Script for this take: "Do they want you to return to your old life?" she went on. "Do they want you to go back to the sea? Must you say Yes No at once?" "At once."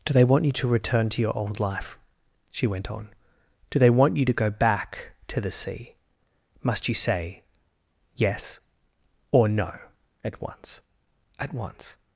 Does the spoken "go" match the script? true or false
true